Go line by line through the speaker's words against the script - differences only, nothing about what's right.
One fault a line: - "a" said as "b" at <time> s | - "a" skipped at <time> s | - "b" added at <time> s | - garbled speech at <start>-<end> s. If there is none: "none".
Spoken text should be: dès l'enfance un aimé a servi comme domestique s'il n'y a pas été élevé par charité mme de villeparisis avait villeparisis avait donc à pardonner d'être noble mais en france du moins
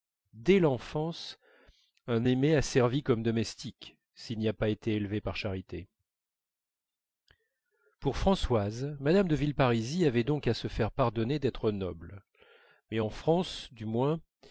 - "pour françoise" added at 8.0 s
- "villeparisis avait donc à" said as "donc à se faire" at 10.2 s